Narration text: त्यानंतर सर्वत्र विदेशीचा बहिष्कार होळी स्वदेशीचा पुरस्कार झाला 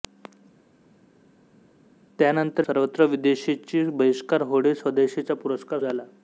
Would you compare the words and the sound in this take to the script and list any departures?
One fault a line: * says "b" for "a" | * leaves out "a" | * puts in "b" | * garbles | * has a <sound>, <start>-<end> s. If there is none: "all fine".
all fine